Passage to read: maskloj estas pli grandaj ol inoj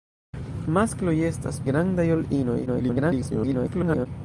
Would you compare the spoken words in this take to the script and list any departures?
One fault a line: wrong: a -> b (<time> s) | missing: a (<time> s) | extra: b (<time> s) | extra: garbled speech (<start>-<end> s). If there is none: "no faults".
missing: pli (1.6 s)
extra: garbled speech (2.7-4.1 s)